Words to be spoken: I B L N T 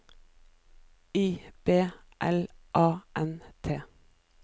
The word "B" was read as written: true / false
true